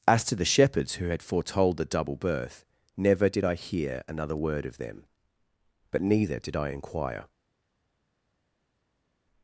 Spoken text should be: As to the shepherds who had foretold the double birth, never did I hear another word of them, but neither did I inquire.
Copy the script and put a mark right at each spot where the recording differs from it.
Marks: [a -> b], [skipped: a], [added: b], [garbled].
As to the shepherds who had foretold the double birth, never did I hear another word of them, but neither did I inquire.